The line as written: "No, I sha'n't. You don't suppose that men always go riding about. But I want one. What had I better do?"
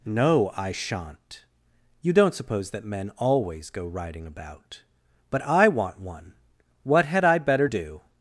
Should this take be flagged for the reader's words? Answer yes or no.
no